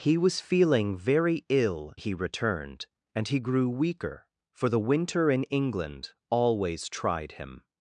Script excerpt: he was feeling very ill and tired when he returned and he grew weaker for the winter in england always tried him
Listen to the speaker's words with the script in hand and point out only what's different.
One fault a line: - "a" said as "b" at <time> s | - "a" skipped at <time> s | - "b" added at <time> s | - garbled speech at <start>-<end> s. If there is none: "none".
- "and tired when" skipped at 1.9 s